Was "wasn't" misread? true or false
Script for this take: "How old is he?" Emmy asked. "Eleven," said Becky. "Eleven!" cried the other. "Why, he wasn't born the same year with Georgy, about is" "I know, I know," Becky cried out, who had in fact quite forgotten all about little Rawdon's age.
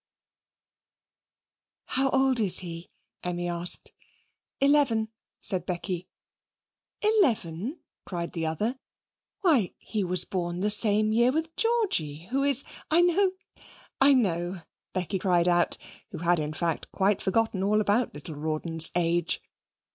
true